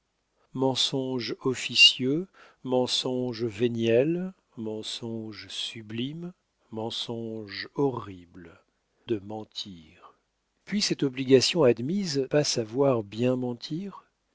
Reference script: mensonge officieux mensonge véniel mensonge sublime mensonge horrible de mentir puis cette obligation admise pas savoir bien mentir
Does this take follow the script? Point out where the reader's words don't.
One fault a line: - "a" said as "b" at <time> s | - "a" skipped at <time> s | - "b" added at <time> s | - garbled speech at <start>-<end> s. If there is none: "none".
none